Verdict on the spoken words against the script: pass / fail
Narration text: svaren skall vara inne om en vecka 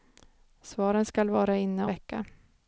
fail